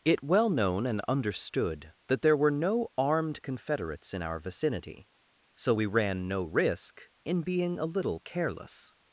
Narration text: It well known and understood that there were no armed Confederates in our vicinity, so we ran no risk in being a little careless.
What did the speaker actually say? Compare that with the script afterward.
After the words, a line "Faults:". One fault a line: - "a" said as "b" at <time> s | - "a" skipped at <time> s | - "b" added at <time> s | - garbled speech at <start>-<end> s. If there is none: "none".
It well known and understood that there were no armed Confederates in our vicinity, so we ran no risk in being a little careless.
Faults:
none